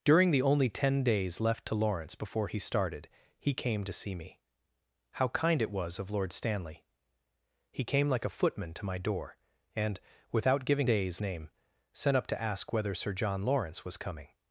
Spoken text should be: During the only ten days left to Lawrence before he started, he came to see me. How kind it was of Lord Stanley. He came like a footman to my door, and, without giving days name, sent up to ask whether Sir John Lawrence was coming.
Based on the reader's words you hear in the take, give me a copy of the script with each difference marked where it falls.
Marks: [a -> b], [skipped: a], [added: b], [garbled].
During the only ten days left to Lawrence before he started, he came to see me. How kind it was of Lord Stanley. He came like a footman to my door, and, without giving days name, sent up to ask whether Sir John Lawrence was coming.